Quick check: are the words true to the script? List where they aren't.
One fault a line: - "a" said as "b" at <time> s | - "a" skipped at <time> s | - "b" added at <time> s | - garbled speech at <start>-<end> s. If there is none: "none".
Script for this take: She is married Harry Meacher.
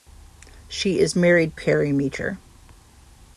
none